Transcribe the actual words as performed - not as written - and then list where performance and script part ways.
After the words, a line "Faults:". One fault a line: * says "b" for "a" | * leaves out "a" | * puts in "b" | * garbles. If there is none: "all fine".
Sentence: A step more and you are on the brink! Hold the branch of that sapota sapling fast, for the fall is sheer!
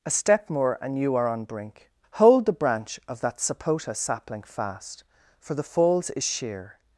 A step more and you are on brink! Hold the branch of that sapota sapling fast, for the falls is sheer!
Faults:
* leaves out "the"
* says "falls" for "fall"